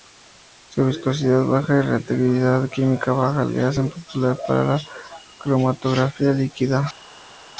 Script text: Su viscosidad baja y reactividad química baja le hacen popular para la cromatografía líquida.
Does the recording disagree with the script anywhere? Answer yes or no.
no